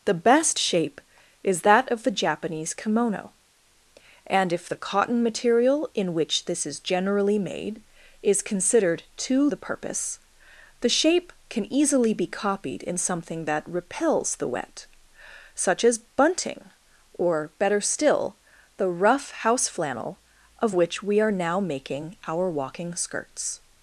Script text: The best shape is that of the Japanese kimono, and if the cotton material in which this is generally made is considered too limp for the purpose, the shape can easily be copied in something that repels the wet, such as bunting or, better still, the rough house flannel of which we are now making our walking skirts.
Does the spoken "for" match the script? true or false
false